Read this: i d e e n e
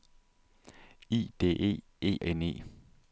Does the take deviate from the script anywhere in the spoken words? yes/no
no